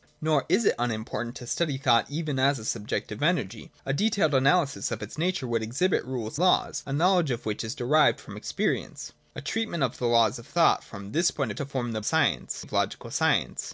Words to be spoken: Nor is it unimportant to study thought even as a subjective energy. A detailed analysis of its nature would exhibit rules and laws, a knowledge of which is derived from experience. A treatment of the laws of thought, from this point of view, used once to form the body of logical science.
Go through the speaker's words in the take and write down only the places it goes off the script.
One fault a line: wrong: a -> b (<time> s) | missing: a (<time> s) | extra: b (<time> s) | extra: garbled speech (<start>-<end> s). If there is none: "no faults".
missing: and (6.4 s)
missing: view used once (11.6 s)
wrong: body -> science (12.0 s)